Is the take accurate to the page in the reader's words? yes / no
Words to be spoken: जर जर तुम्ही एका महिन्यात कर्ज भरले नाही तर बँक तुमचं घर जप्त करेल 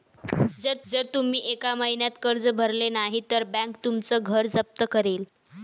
yes